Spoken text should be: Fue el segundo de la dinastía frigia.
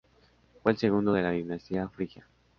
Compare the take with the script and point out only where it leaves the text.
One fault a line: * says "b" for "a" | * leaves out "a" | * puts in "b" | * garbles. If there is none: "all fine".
all fine